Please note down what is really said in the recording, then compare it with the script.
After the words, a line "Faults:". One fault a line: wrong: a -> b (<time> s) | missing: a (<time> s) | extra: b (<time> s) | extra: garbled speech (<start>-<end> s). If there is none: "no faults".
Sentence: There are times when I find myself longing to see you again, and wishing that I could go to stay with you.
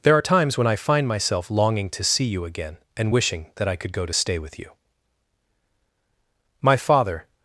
There are times when I find myself longing to see you again, and wishing that I could go to stay with you. My father
Faults:
extra: My father (6.6 s)